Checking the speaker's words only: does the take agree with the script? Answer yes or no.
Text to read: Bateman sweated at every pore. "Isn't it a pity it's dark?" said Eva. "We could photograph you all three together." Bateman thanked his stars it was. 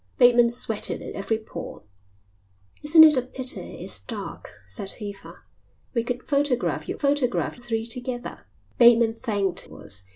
no